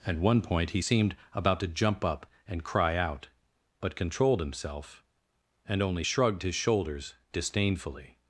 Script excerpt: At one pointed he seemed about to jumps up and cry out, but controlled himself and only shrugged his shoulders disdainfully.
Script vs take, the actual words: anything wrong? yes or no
yes